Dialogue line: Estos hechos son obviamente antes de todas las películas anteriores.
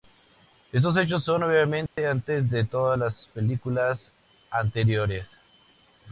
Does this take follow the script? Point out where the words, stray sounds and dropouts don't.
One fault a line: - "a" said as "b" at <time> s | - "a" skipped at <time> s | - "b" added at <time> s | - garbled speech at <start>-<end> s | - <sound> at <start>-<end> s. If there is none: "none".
- dropout at 1.9-2.0 s